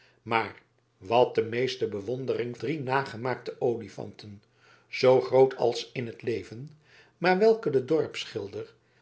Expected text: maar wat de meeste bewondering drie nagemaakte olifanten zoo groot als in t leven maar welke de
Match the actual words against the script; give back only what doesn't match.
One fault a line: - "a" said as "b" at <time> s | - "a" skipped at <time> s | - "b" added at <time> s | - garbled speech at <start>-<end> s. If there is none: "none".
none